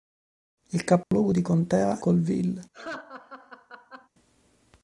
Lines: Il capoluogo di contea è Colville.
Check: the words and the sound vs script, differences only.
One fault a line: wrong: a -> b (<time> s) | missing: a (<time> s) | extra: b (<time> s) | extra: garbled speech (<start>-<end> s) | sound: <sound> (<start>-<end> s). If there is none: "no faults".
sound: dropout (1.0-1.1 s)
missing: è (2.0 s)
sound: laugh (2.7-4.1 s)